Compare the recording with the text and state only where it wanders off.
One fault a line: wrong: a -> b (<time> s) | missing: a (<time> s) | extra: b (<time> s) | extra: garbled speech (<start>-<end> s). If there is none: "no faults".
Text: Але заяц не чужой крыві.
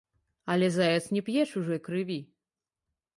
extra: п'е (1.3 s)